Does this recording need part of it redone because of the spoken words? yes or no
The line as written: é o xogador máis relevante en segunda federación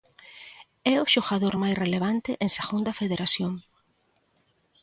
no